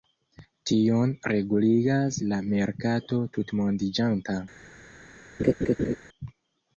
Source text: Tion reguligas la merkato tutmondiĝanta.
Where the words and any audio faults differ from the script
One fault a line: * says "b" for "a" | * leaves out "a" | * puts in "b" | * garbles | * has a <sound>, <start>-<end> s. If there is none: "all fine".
* has a laugh, 5.4-6.0 s